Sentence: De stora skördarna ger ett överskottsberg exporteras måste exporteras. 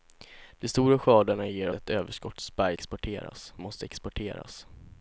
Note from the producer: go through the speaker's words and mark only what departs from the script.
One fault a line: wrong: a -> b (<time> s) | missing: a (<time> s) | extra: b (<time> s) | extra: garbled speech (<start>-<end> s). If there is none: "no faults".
no faults